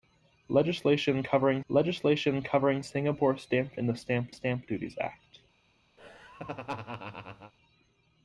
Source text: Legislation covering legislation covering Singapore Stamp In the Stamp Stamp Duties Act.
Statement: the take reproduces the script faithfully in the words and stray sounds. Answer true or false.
false